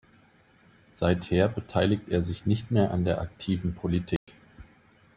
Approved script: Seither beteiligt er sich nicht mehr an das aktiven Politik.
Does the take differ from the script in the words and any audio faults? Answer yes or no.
yes